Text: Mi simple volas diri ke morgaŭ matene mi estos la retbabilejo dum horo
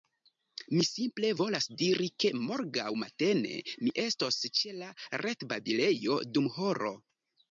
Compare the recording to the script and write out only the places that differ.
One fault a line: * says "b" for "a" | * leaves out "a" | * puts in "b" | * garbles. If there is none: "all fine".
* puts in "ĉe"